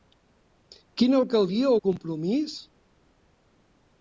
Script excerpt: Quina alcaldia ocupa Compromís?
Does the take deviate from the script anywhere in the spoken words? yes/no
yes